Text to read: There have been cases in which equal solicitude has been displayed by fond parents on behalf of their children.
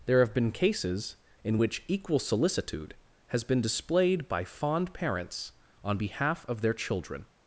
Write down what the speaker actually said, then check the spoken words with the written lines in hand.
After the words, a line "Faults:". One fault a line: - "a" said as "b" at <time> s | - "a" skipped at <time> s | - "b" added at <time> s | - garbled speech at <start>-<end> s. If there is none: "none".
There have been cases in which equal solicitude has been displayed by fond parents on behalf of their children.
Faults:
none